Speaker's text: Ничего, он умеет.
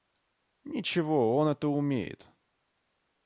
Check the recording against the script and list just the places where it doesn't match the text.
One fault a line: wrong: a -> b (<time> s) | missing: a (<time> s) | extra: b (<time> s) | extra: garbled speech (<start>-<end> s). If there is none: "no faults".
extra: это (1.5 s)